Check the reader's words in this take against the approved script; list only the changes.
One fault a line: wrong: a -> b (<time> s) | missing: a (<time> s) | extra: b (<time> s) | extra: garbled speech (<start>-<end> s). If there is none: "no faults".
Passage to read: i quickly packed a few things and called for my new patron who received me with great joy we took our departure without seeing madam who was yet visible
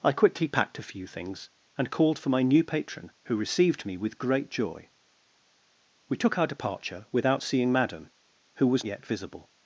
no faults